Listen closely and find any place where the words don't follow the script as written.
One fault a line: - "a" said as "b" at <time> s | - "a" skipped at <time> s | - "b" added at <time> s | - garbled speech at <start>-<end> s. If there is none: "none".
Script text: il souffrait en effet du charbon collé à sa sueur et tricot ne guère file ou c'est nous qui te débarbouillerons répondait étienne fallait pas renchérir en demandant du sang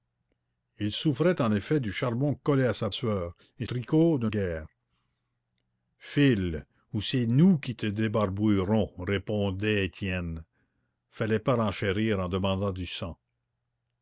none